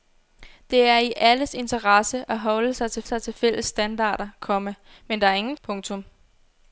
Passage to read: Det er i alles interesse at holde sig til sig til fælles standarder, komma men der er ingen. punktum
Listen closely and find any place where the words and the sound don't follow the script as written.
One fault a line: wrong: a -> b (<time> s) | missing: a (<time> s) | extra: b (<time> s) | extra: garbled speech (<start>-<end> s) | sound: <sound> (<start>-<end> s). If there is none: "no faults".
no faults